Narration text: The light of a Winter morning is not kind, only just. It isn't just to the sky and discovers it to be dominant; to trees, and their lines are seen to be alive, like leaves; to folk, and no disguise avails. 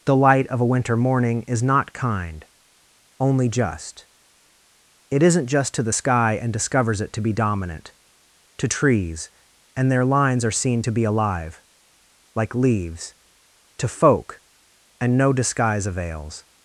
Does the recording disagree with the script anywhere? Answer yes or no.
no